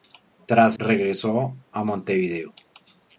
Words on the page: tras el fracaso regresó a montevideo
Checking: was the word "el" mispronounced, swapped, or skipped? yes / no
yes